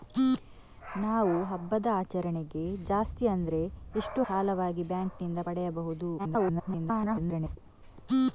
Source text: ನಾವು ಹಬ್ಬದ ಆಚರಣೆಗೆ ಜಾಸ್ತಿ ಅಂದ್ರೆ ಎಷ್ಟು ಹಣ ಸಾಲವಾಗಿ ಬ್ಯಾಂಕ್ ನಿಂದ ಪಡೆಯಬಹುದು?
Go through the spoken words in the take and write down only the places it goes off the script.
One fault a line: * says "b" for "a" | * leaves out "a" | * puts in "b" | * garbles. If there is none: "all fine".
* leaves out "ಹಣ"
* garbles